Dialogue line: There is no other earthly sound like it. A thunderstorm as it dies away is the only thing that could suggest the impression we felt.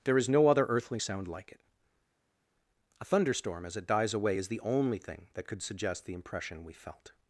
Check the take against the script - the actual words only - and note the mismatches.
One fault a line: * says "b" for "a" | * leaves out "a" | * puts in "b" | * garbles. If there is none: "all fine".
all fine